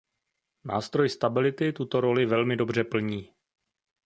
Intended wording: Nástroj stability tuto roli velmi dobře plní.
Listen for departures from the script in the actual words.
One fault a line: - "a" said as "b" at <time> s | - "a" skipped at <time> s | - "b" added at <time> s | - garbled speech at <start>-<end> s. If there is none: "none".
none